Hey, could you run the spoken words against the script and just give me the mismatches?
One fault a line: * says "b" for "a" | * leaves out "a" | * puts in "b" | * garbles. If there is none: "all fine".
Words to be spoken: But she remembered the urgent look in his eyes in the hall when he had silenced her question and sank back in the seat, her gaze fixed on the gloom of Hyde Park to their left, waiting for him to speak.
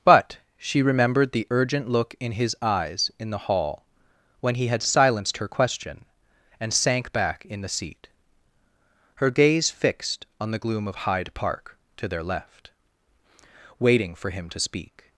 all fine